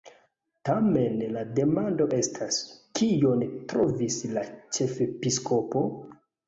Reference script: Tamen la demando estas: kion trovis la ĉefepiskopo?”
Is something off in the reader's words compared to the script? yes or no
no